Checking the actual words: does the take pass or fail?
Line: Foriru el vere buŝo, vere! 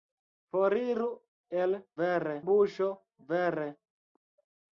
pass